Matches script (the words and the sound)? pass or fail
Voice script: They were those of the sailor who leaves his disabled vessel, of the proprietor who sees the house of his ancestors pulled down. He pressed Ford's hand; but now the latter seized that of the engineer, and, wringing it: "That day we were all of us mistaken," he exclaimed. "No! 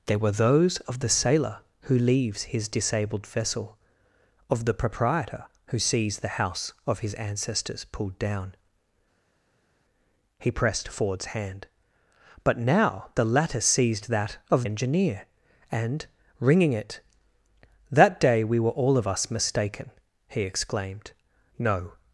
fail